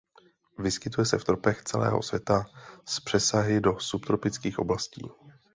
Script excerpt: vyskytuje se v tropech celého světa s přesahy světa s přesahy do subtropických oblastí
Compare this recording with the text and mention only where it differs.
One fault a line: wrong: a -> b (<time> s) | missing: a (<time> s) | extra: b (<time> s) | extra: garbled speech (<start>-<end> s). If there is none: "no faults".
missing: světa s přesahy (3.6 s)